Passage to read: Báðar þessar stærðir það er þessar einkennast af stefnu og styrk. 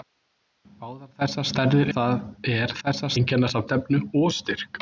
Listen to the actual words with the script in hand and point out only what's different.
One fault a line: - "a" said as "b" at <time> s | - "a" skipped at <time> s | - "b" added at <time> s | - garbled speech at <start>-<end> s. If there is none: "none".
none